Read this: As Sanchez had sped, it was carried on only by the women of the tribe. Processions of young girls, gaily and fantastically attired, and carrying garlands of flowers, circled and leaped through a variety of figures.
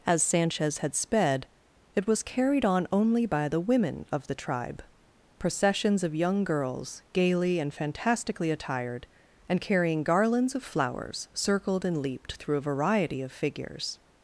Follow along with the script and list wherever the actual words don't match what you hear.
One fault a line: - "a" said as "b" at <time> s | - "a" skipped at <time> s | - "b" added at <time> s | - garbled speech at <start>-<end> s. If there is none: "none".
none